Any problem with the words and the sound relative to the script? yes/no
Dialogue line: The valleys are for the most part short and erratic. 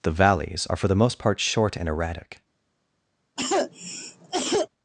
yes